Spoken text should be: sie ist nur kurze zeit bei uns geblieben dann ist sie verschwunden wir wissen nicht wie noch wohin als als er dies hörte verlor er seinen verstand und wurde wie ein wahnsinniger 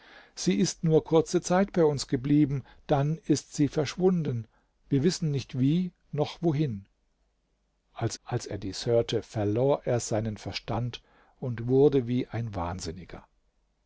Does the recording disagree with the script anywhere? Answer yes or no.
no